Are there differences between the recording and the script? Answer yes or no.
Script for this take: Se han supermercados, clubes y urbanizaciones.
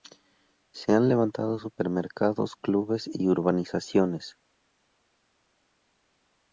yes